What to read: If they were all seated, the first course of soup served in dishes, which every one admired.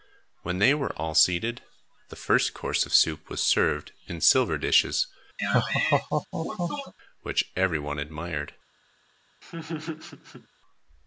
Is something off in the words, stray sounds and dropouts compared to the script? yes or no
yes